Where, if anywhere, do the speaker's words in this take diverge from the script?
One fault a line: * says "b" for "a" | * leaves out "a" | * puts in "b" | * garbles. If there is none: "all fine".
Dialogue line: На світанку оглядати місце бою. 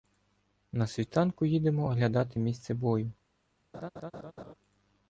* puts in "їдемо"